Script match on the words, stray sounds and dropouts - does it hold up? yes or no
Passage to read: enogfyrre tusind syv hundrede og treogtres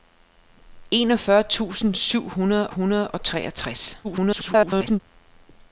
no